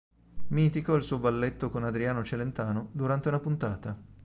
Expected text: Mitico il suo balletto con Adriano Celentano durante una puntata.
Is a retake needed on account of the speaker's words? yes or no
no